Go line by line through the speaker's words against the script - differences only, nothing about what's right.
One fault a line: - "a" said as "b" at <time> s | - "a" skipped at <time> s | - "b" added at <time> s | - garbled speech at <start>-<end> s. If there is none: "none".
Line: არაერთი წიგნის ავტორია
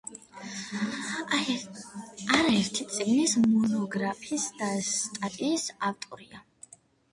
- "მონოგრაფიის და სტატიის" added at 3.5 s